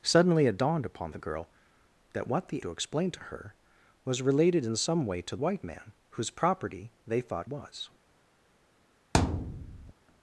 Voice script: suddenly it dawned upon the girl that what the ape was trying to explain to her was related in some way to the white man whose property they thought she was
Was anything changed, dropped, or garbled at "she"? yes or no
yes